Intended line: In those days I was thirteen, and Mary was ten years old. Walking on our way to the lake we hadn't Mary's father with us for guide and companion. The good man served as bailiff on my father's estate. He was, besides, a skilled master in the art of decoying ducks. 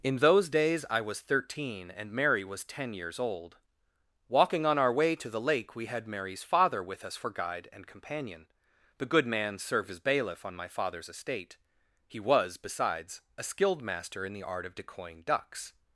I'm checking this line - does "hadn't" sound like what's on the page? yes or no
no